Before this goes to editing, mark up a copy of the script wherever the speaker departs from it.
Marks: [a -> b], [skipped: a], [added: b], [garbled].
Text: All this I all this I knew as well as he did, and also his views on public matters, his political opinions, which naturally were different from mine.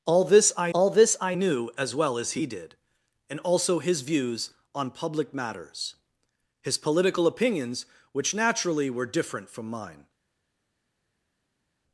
All this I all this I knew as well as he did, and also his views on public matters, his political opinions, which naturally were different from mine.